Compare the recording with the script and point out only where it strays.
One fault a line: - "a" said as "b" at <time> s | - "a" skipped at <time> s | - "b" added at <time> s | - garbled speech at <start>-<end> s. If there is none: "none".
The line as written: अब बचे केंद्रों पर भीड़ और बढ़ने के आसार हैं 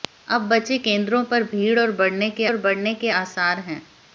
- "और बढ़ने के" added at 2.4 s